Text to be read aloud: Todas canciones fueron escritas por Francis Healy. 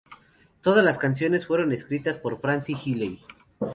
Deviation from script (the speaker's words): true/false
true